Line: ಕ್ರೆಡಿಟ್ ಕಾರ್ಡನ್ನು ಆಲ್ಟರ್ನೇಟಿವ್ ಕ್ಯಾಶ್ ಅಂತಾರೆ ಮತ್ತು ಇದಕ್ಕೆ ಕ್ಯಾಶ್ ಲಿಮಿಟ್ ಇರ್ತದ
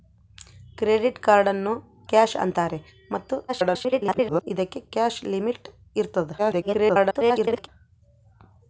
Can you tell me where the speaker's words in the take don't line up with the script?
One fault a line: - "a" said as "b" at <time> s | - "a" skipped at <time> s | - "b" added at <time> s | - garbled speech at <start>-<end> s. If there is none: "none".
- "ಆಲ್ಟರ್ನೇಟಿವ್" skipped at 1.7 s
- garbled speech at 3.5-4.4 s
- garbled speech at 6.4-7.7 s